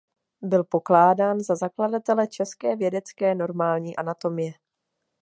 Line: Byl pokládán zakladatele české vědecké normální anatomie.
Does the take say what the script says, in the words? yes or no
no